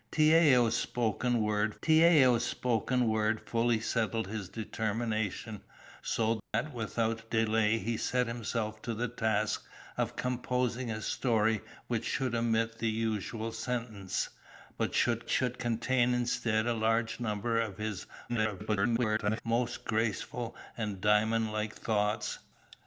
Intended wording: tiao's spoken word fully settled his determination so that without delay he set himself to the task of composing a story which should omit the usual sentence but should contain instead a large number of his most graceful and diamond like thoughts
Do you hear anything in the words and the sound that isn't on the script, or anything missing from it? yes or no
yes